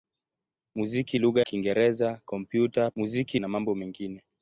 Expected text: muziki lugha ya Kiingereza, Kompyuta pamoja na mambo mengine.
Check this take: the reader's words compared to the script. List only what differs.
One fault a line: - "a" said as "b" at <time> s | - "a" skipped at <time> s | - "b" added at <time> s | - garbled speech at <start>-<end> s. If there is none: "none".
- "ya" skipped at 1.4 s
- "pamoja" said as "muziki" at 3.0 s